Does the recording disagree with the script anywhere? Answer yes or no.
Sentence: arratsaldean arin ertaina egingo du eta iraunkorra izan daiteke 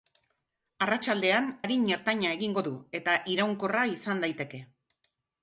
no